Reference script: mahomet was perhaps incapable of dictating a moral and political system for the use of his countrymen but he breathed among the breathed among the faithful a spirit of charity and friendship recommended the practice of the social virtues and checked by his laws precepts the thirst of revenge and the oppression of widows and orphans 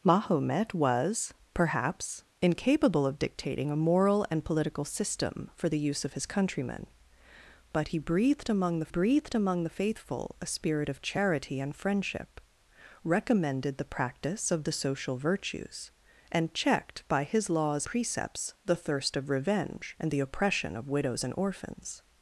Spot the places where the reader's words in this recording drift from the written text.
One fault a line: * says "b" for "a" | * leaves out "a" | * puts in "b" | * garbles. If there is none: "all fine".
all fine